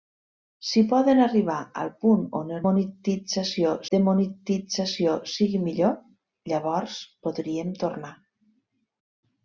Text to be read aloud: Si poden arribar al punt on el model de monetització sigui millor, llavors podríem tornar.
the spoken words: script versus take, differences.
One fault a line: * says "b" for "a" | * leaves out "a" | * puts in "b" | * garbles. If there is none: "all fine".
* says "monetització" for "model"